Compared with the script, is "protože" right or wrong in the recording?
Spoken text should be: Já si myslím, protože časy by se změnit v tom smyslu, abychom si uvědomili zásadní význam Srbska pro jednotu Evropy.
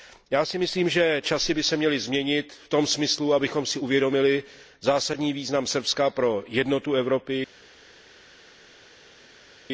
wrong